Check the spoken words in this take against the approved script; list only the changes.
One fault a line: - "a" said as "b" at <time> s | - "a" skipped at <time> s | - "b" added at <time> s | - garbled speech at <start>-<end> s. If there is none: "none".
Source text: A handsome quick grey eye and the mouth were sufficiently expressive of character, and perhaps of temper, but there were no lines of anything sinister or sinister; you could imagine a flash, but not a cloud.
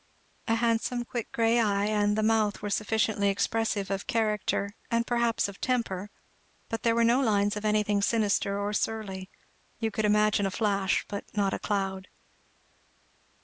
- "sinister" said as "surly" at 8.7 s